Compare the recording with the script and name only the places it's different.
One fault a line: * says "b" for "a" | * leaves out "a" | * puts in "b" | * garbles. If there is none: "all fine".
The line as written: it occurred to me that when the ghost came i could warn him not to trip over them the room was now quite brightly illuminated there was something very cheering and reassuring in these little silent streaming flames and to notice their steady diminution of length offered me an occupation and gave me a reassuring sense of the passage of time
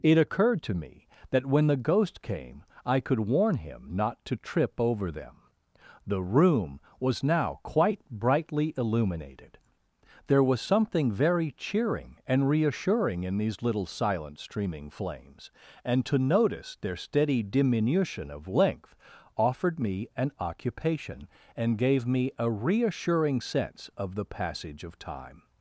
all fine